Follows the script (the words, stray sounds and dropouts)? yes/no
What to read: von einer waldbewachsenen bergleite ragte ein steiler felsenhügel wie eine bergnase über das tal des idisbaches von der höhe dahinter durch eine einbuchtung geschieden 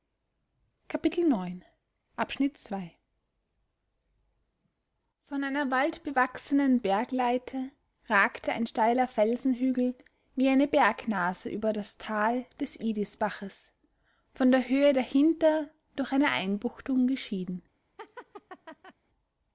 no